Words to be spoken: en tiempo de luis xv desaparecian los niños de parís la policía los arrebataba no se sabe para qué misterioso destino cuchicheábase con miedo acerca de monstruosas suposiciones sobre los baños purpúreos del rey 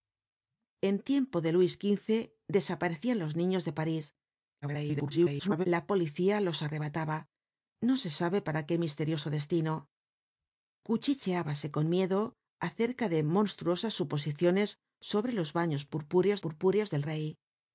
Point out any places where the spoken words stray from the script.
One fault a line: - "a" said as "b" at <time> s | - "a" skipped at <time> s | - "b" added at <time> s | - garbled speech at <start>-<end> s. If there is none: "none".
- garbled speech at 4.6-5.7 s
- "purpúreos" added at 16.4 s